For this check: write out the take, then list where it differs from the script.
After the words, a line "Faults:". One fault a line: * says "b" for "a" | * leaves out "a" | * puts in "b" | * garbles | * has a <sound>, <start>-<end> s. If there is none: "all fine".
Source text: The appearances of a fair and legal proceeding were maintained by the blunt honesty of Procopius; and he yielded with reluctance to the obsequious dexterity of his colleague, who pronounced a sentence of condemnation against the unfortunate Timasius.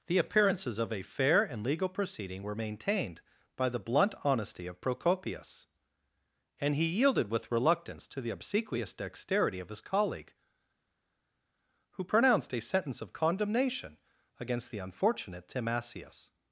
The appearances of a fair and legal proceeding were maintained by the blunt honesty of Procopius; and he yielded with reluctance to the obsequious dexterity of his colleague, who pronounced a sentence of condemnation against the unfortunate Timasius.
Faults:
all fine